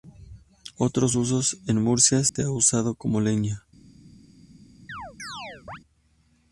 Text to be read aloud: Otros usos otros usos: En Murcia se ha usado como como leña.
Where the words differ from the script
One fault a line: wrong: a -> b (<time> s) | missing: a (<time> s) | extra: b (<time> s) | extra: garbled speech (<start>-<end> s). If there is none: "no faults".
missing: otros usos (1.6 s)
missing: como (3.2 s)